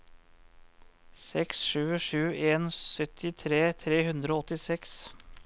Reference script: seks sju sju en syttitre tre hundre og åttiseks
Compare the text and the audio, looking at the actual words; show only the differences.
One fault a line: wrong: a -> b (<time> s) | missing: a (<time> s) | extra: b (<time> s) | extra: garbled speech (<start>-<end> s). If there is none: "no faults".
no faults